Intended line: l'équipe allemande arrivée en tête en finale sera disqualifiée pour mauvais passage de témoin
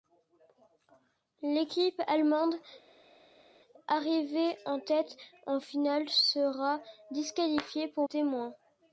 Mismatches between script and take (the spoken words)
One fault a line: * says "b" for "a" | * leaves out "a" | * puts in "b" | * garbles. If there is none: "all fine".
* leaves out "mauvais passage de"